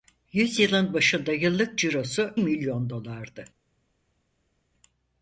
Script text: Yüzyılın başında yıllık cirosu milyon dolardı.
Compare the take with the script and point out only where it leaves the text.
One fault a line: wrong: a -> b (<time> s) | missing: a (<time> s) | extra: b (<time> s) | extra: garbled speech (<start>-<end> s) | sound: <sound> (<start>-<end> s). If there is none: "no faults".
no faults